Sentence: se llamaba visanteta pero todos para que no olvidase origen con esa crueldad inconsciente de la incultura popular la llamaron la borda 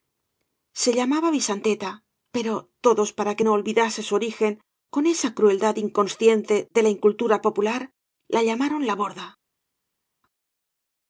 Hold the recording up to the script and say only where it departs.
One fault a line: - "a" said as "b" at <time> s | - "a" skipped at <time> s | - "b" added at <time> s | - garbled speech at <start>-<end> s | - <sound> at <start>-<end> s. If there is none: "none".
- "su" added at 4.0 s